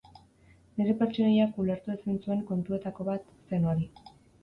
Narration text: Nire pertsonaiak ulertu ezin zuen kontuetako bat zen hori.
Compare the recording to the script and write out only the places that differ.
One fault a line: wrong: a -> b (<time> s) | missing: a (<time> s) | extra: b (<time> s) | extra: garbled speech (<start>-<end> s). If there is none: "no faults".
no faults